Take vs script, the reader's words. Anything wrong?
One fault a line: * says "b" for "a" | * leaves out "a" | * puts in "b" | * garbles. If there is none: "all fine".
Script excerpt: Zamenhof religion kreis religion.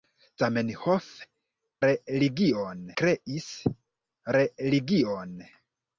all fine